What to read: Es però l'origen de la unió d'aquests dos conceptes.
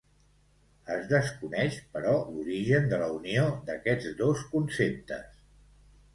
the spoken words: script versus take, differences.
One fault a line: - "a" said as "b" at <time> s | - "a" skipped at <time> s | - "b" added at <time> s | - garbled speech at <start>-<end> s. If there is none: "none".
- "desconeix" added at 1.1 s